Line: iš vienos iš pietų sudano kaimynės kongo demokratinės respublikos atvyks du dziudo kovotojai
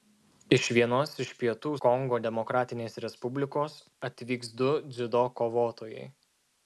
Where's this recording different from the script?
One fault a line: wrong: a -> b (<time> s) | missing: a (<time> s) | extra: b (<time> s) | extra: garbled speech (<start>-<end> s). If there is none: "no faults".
missing: sudano kaimynės (1.7 s)